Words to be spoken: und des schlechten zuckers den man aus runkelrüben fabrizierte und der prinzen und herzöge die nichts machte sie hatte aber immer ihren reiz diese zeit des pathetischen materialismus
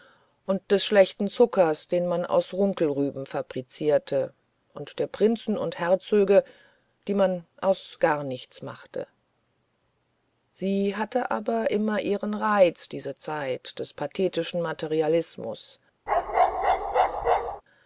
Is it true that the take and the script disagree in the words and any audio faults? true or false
true